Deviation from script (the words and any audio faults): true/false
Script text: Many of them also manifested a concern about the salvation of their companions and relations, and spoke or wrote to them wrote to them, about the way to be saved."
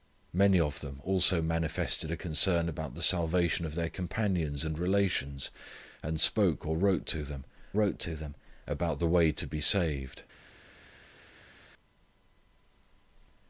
false